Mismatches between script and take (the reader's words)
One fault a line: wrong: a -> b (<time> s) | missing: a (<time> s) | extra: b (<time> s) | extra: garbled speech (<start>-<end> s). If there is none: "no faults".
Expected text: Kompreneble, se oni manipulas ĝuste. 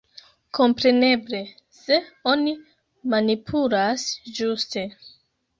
no faults